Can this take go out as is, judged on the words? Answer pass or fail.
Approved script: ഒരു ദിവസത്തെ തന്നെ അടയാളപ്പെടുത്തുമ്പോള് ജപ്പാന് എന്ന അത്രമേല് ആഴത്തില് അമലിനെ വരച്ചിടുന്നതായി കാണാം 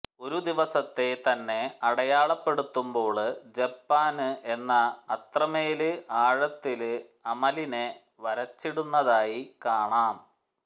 pass